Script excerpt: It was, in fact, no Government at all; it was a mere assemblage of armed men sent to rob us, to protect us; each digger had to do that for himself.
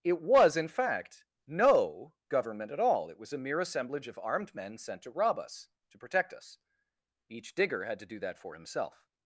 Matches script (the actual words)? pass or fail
pass